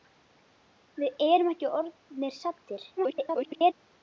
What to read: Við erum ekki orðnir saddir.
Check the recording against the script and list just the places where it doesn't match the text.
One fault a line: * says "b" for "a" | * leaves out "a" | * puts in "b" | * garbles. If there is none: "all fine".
* garbles